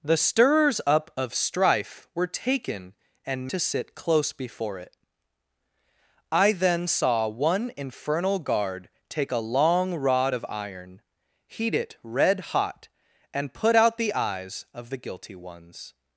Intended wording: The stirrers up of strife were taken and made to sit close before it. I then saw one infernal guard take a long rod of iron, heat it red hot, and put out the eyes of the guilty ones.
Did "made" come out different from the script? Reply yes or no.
yes